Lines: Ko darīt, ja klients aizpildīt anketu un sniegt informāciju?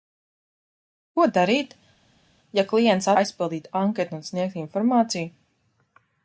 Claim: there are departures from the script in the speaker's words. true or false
false